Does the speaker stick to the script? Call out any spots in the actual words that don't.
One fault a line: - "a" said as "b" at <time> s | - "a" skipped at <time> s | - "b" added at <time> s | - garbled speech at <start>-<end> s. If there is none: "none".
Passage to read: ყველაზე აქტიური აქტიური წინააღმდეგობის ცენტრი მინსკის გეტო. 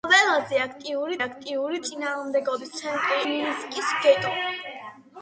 none